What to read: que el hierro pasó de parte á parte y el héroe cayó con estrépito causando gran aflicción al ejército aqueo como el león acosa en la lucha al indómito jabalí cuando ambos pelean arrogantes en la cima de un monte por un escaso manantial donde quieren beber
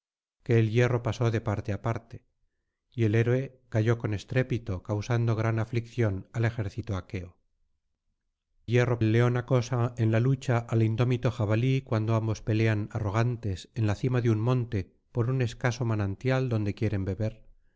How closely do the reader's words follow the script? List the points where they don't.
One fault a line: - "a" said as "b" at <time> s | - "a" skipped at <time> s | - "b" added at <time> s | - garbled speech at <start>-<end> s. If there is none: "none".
- "como" said as "hierro" at 8.7 s